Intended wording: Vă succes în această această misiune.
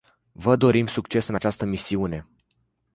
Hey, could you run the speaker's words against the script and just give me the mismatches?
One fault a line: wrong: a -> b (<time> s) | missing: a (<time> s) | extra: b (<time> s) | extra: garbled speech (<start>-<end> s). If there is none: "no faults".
extra: dorim (0.5 s)
missing: această (1.7 s)